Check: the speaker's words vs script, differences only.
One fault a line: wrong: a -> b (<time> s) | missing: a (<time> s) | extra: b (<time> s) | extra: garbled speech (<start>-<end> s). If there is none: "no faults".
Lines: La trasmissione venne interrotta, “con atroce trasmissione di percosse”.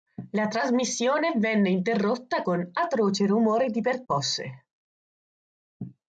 wrong: trasmissione -> rumore (3.3 s)